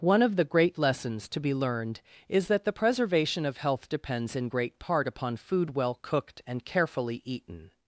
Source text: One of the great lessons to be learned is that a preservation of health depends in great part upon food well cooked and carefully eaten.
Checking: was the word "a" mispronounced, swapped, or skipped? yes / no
yes